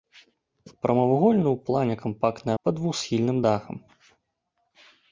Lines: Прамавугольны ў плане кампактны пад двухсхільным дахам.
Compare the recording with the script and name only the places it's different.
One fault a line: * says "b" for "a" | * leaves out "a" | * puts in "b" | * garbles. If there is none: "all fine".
all fine